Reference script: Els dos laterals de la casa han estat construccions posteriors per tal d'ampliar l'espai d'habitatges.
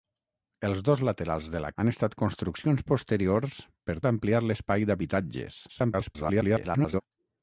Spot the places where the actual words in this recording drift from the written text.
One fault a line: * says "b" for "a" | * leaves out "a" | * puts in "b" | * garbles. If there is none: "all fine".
* leaves out "casa"
* leaves out "tal"
* garbles